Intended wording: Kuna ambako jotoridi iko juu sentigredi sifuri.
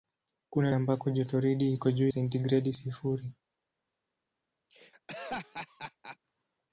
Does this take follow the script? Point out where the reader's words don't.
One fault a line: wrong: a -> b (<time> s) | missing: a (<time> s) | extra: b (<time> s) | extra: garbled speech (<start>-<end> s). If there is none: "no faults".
no faults